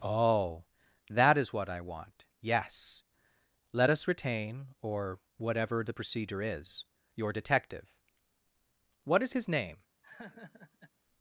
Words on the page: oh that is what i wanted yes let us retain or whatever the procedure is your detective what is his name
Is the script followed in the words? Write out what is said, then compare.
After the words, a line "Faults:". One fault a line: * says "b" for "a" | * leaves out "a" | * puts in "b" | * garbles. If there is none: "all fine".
oh that is what i want yes let us retain or whatever the procedure is your detective what is his name
Faults:
* says "want" for "wanted"